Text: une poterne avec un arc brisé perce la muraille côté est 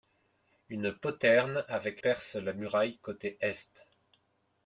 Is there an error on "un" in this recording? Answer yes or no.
yes